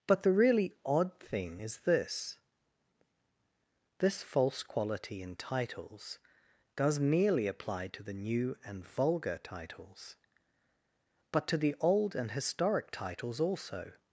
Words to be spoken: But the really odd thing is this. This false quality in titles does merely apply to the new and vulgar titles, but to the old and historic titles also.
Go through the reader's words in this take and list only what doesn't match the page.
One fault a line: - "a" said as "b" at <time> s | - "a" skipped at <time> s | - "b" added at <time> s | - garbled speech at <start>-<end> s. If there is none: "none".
none